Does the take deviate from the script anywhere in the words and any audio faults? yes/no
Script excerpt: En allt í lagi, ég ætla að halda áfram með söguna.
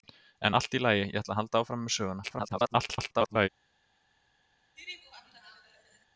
yes